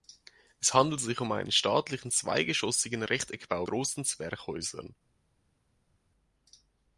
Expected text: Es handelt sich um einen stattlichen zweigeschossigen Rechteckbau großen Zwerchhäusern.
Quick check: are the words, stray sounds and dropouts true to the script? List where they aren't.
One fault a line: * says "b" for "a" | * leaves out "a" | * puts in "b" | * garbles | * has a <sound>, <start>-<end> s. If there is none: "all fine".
all fine